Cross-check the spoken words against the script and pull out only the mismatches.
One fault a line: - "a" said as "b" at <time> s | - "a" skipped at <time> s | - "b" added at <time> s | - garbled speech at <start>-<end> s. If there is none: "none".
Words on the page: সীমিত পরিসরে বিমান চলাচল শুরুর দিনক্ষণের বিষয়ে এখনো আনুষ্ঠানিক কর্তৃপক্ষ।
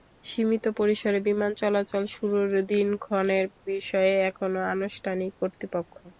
none